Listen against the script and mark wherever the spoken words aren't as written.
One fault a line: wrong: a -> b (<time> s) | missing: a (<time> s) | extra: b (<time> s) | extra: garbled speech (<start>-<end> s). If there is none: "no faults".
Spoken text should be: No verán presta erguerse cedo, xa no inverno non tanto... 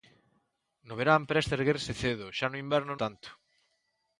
missing: non (2.9 s)